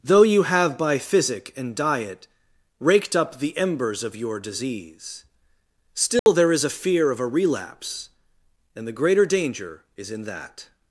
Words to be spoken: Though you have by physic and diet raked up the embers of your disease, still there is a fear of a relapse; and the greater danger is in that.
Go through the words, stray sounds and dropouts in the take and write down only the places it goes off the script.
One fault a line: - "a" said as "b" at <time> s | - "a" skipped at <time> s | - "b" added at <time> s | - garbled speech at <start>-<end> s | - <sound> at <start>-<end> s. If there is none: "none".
- dropout at 6.2-6.3 s